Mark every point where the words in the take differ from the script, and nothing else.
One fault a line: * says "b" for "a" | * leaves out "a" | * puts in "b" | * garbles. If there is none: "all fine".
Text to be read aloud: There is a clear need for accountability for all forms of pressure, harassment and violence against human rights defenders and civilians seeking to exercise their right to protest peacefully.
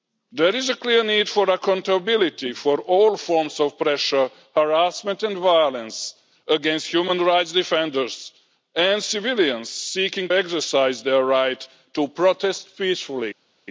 * leaves out "to"